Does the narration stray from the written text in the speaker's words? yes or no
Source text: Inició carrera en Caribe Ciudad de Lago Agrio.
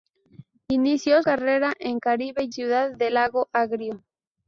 no